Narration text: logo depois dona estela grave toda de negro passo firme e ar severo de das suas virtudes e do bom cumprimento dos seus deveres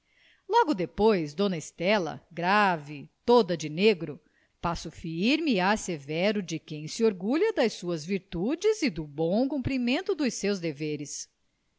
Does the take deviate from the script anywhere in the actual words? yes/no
yes